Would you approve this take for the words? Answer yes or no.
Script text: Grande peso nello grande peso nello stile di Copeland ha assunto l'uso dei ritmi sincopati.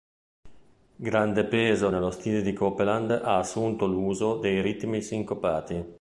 no